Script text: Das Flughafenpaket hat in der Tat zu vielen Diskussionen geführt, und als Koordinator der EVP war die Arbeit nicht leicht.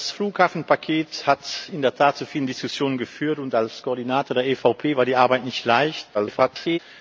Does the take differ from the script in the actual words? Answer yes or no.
yes